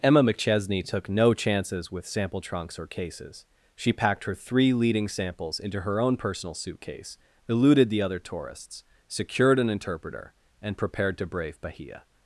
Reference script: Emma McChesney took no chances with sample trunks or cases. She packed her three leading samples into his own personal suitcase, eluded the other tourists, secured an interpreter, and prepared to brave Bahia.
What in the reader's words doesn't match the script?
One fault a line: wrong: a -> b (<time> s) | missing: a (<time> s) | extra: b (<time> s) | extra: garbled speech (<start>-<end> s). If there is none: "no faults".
wrong: his -> her (5.8 s)